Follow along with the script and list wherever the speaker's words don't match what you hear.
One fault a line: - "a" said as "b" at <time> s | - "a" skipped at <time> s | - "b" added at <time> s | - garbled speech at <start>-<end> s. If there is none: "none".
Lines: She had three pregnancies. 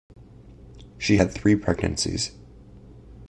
none